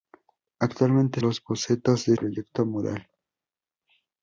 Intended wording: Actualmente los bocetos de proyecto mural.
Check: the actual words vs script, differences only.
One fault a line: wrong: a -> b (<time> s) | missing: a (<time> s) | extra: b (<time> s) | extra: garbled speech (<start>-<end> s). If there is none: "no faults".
no faults